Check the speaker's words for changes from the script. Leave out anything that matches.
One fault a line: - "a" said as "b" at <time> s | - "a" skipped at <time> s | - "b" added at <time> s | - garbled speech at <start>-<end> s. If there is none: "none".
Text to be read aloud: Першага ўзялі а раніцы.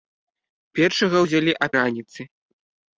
none